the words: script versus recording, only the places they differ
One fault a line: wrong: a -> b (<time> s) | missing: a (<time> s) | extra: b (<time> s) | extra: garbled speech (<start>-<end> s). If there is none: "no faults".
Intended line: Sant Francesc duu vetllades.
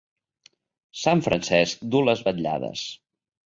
extra: les (2.1 s)